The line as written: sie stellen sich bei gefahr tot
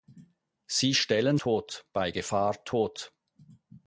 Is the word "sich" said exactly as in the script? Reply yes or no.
no